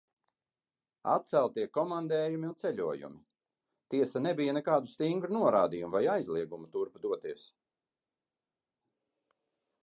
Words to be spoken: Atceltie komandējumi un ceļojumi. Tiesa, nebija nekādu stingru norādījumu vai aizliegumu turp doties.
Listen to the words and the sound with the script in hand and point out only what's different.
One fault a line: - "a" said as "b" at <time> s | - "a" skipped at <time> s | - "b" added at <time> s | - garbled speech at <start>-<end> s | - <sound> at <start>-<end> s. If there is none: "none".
none